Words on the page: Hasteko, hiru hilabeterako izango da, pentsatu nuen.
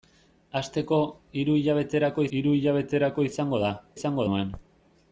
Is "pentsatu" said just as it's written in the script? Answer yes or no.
no